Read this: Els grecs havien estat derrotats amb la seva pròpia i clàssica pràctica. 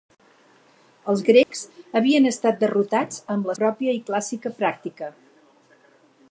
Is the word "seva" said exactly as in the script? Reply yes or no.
no